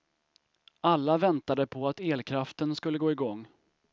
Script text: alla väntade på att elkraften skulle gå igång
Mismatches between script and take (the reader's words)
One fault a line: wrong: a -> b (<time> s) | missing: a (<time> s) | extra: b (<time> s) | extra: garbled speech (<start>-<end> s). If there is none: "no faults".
no faults